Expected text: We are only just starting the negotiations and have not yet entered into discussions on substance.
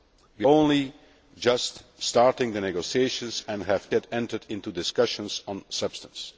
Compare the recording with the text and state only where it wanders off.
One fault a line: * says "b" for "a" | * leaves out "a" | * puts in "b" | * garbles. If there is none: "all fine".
* leaves out "are"
* leaves out "not"